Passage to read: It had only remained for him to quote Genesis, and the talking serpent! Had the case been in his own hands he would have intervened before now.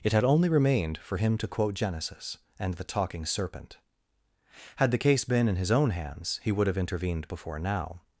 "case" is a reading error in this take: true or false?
false